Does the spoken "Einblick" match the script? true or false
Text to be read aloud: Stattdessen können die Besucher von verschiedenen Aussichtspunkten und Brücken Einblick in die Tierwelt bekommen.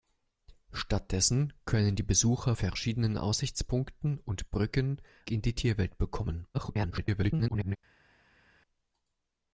false